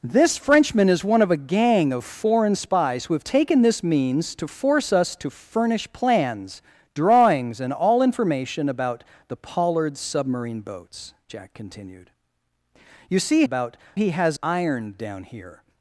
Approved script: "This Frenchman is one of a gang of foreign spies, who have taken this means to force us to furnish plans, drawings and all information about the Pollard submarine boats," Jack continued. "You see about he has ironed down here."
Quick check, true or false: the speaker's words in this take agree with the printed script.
true